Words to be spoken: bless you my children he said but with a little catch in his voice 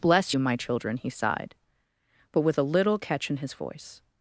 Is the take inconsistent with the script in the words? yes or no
yes